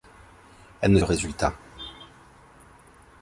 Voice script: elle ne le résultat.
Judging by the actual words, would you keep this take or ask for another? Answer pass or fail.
pass